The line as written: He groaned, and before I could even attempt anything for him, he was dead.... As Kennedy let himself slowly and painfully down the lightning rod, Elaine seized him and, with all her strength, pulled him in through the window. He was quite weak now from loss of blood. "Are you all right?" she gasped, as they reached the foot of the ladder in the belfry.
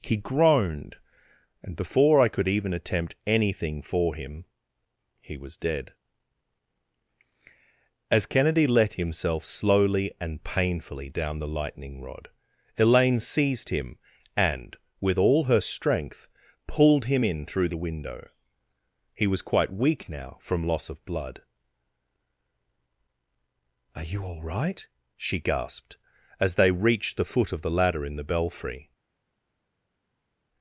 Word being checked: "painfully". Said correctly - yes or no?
yes